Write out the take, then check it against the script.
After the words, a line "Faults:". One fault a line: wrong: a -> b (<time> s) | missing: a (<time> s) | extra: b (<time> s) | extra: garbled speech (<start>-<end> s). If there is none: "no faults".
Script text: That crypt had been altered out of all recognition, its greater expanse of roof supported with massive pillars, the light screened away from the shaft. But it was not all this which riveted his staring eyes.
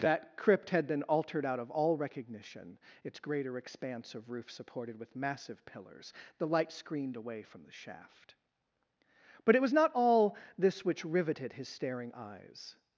That crypt had been altered out of all recognition, its greater expanse of roof supported with massive pillars, the light screened away from the shaft. But it was not all this which riveted his staring eyes.
Faults:
no faults